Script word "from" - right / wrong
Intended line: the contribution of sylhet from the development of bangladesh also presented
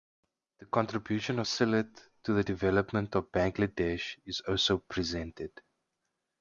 wrong